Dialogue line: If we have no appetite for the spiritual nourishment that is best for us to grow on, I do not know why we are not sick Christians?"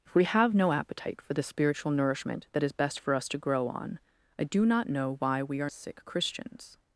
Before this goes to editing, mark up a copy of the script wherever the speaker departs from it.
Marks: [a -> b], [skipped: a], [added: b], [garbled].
If we have no appetite for the spiritual nourishment that is best for us to grow on, I do not know why we are [skipped: not] sick Christians?"